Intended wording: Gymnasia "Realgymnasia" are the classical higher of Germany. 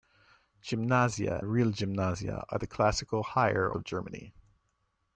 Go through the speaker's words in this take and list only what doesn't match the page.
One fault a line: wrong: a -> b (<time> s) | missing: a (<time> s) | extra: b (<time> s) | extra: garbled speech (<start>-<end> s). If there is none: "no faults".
no faults